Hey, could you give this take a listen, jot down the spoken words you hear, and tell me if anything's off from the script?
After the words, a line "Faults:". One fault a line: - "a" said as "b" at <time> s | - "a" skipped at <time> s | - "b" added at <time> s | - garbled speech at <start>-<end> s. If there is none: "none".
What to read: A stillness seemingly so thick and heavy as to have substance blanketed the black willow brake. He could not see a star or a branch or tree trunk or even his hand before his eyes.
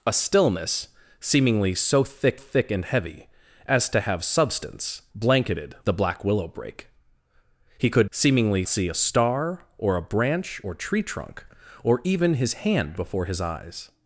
A stillness seemingly so thick thick and heavy as to have substance blanketed the black willow brake. He could seemingly see a star or a branch or tree trunk or even his hand before his eyes.
Faults:
- "thick" added at 2.3 s
- "not" said as "seemingly" at 8.1 s